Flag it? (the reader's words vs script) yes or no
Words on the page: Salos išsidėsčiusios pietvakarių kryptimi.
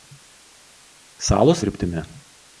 yes